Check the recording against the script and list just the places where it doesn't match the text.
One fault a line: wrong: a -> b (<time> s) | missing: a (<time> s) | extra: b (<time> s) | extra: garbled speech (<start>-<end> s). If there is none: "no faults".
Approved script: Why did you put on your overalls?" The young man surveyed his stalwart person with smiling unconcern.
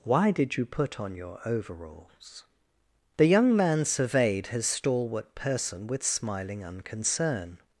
no faults